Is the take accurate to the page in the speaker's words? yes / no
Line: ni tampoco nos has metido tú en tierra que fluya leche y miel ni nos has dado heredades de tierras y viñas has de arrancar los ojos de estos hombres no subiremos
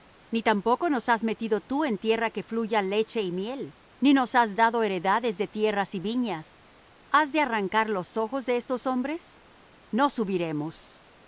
yes